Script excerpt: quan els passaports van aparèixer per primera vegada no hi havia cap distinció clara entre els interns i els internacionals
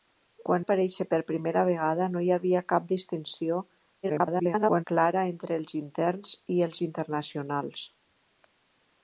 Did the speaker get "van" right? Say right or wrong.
wrong